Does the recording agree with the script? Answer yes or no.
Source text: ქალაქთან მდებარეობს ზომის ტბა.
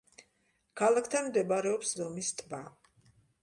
yes